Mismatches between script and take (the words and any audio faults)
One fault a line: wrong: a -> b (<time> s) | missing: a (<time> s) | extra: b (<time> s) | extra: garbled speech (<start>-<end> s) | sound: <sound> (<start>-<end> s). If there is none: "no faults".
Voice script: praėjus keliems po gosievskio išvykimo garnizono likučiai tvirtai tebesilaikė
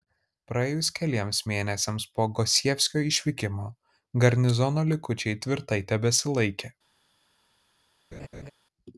extra: mėnesiams (1.5 s)
sound: laugh (8.1-8.5 s)